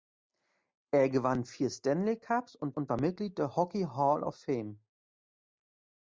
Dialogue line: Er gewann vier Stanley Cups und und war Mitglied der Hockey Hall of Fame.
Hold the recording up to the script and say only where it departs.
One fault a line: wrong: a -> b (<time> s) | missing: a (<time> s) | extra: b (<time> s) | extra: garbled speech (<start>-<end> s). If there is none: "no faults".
no faults